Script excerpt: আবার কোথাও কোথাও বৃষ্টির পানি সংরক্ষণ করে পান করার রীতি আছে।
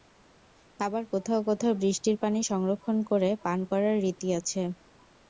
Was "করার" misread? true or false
false